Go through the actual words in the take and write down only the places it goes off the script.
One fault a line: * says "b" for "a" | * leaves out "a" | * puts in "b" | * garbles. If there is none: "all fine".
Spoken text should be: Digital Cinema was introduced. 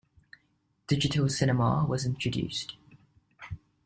all fine